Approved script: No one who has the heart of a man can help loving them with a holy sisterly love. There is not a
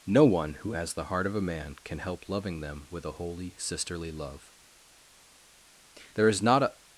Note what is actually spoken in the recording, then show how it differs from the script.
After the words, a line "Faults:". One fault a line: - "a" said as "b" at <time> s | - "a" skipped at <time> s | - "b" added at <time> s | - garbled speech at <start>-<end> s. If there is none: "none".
No one who has the heart of a man can help loving them with a holy sisterly love. There is not a
Faults:
none